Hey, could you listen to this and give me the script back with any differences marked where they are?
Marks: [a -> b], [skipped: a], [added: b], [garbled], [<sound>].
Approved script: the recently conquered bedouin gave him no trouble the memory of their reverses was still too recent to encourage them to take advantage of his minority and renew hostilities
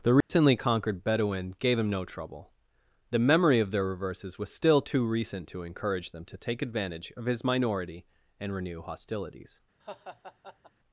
the recently [dropout] conquered bedouin gave him no trouble the memory of their reverses was still too recent to encourage them to take advantage of his minority and renew hostilities [laugh]